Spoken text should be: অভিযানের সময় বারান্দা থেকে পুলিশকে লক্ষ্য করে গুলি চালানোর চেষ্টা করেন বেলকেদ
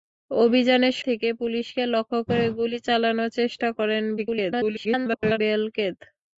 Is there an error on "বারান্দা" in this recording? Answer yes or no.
yes